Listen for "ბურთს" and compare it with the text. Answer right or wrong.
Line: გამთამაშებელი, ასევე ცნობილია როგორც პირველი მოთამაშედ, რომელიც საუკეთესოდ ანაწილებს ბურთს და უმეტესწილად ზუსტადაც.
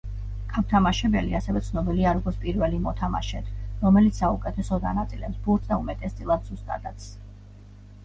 right